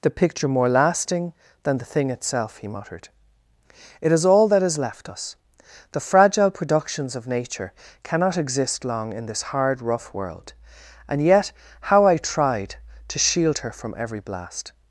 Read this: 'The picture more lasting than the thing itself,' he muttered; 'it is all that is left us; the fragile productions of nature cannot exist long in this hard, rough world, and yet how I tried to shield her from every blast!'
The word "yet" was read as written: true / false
true